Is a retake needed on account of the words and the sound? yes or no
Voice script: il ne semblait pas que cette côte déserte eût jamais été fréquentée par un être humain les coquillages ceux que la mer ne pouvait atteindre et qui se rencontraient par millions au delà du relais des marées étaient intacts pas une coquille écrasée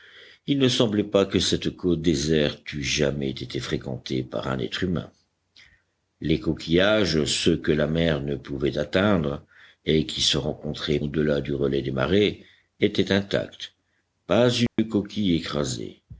yes